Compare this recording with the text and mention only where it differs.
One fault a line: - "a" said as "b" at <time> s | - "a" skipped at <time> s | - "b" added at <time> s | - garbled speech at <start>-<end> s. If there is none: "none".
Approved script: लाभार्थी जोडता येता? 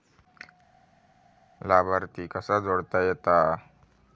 - "कसा" added at 2.3 s